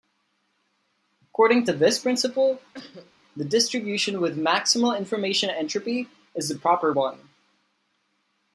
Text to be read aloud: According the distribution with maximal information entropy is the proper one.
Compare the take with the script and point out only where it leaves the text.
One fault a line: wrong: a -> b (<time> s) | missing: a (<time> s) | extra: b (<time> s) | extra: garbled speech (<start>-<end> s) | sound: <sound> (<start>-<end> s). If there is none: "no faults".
extra: to this principle (1.6 s)
sound: cough (2.7-3.1 s)